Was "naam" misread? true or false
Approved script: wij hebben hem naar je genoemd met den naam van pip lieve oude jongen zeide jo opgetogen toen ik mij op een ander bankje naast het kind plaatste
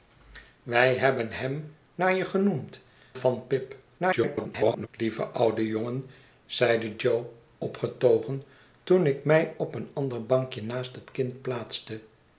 true